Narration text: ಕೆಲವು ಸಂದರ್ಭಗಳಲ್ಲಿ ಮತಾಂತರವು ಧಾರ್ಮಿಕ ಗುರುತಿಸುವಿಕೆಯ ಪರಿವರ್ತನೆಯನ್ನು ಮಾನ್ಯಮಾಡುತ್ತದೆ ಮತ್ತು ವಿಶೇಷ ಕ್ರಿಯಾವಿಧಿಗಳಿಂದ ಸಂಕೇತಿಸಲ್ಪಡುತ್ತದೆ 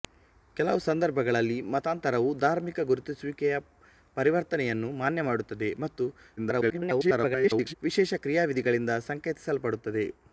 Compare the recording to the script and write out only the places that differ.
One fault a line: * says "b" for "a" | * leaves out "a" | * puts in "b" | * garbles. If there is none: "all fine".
* garbles